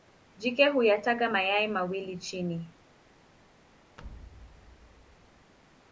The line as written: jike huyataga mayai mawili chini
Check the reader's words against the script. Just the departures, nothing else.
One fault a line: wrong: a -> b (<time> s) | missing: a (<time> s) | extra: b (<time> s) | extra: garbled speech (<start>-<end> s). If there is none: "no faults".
no faults